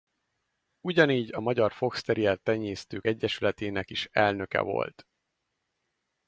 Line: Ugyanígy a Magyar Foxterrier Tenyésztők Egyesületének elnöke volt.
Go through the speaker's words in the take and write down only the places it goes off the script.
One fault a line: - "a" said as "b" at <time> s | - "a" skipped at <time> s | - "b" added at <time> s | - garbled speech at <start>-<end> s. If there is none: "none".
- "is" added at 3.9 s